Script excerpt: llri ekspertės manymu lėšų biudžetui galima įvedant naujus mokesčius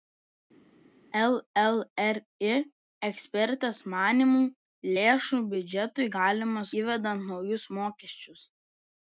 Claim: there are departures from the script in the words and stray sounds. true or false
false